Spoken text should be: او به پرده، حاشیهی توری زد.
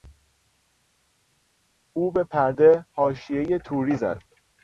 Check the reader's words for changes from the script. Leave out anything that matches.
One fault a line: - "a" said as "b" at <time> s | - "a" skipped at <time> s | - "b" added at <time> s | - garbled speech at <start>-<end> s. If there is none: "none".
none